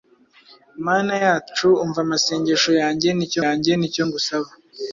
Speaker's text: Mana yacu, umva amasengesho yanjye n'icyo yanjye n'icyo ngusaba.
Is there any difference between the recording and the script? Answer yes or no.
no